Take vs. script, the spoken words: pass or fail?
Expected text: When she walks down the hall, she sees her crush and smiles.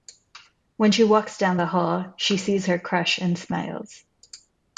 pass